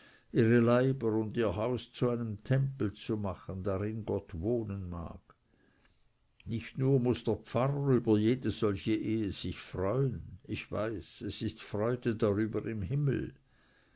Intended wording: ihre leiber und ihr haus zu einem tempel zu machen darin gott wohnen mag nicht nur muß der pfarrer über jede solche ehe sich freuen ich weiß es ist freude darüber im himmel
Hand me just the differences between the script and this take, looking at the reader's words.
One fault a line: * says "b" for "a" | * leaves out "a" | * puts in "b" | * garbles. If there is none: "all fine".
all fine